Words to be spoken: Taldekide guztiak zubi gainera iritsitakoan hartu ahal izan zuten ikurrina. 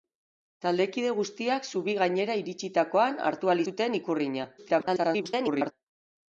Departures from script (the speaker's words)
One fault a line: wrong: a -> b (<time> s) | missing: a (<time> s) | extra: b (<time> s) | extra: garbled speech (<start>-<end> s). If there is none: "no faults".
missing: izan (3.6 s)
extra: garbled speech (4.6-5.7 s)